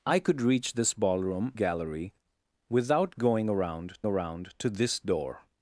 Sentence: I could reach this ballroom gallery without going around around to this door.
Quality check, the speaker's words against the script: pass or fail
pass